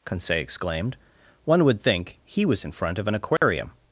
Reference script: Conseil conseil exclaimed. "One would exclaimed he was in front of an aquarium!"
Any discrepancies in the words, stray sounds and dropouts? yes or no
yes